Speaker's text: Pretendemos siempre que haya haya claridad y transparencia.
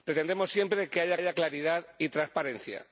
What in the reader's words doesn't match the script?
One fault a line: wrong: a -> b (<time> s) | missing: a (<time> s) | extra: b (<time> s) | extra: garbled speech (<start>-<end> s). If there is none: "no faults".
no faults